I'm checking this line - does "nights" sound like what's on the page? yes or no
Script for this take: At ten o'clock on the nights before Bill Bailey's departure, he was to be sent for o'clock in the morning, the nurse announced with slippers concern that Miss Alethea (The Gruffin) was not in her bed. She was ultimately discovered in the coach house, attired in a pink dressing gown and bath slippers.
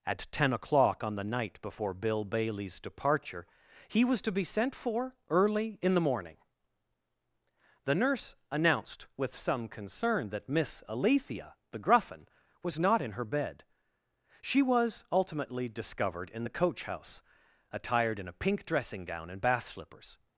no